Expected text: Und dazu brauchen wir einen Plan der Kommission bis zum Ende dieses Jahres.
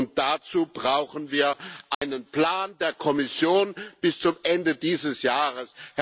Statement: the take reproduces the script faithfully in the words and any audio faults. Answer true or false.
false